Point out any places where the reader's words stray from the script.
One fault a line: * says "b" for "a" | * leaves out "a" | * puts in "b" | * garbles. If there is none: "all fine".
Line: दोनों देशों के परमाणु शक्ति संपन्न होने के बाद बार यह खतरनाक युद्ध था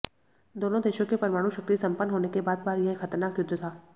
all fine